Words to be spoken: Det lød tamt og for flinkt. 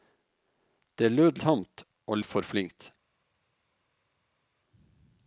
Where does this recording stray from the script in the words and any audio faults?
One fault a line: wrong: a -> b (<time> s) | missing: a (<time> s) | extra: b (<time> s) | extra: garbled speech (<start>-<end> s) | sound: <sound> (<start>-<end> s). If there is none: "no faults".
no faults